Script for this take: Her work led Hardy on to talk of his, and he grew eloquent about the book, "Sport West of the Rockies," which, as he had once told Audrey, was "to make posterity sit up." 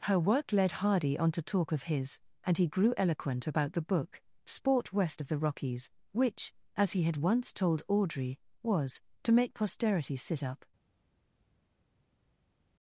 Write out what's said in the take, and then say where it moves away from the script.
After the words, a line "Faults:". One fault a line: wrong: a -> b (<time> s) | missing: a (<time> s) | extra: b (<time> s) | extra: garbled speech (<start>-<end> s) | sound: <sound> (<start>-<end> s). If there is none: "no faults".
Her work led Hardy on to talk of his, and he grew eloquent about the book, "Sport West of the Rockies," which, as he had once told Audrey, was "to make posterity sit up."
Faults:
no faults